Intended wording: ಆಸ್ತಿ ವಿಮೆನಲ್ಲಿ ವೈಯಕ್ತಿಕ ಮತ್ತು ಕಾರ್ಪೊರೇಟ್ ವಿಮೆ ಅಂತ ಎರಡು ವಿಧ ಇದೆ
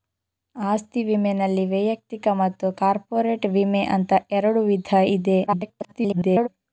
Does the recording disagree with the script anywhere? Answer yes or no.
yes